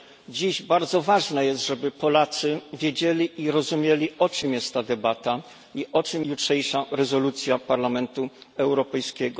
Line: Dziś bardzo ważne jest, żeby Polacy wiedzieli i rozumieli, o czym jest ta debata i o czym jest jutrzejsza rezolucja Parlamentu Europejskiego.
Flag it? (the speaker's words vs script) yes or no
yes